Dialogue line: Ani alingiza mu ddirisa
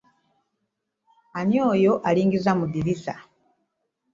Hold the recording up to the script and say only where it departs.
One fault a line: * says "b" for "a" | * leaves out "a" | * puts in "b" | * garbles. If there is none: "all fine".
* puts in "oyo"